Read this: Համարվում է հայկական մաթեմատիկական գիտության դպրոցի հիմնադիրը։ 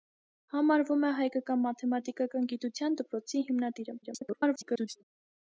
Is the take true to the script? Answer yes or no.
no